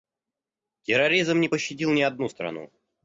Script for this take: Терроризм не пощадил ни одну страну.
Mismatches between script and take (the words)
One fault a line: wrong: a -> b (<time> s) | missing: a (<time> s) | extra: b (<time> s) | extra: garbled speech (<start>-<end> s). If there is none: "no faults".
no faults